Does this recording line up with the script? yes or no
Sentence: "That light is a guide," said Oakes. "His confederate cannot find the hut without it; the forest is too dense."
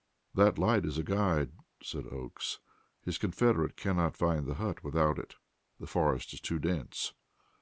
yes